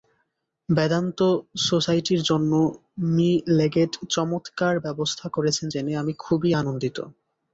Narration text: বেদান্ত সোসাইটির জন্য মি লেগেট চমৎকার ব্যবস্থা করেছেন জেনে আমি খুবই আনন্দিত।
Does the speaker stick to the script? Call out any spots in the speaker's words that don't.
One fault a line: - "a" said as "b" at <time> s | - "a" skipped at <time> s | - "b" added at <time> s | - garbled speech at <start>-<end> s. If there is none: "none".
none